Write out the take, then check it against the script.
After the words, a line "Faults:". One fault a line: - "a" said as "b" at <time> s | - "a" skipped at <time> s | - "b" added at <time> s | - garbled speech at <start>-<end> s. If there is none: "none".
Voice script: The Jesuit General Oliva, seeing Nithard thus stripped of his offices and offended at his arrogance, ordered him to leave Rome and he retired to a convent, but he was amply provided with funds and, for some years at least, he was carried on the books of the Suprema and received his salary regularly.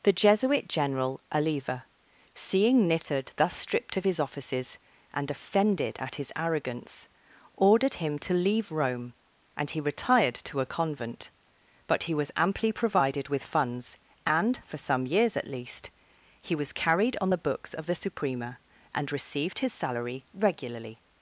The Jesuit General Oliva, seeing Nithard thus stripped of his offices and offended at his arrogance, ordered him to leave Rome and he retired to a convent, but he was amply provided with funds and, for some years at least, he was carried on the books of the Suprema and received his salary regularly.
Faults:
none